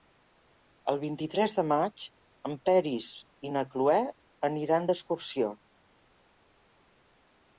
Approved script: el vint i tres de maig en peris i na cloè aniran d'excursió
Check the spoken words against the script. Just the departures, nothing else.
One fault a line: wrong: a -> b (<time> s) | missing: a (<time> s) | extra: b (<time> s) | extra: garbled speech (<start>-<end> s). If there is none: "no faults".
no faults